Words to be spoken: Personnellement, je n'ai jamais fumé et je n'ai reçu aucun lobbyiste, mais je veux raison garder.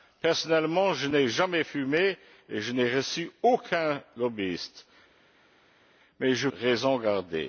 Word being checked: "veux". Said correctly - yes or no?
no